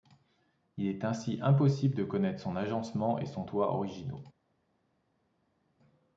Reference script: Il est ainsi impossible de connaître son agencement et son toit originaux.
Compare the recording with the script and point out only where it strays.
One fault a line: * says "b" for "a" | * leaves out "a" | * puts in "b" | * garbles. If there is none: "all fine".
all fine